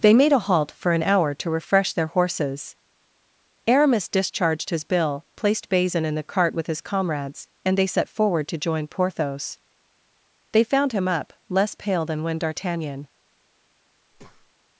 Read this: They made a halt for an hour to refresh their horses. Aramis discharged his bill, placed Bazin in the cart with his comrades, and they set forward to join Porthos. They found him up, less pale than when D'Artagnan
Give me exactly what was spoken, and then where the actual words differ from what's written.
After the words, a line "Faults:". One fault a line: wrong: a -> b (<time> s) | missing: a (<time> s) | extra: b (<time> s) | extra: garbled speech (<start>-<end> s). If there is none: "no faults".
They made a halt for an hour to refresh their horses. Aramis discharged his bill, placed Bazin in the cart with his comrades, and they set forward to join Porthos. They found him up, less pale than when D'Artagnan
Faults:
no faults